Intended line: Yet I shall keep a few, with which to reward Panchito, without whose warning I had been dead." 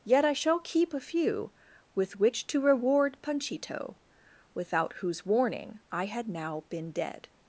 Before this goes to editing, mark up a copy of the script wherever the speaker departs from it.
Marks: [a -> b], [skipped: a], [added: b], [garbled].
Yet I shall keep a few, with which to reward Panchito, without whose warning I had [added: now] been dead."